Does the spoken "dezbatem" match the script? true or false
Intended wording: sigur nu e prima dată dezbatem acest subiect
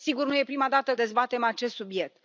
true